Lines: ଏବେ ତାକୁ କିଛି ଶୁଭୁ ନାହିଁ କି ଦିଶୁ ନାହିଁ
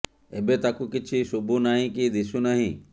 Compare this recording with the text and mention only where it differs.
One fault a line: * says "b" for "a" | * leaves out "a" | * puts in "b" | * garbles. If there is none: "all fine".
all fine